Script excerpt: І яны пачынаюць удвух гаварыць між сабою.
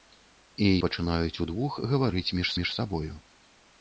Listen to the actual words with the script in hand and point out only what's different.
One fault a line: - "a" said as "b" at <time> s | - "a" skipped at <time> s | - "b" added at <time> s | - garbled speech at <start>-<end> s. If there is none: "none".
- "яны" skipped at 0.7 s
- "між" added at 2.6 s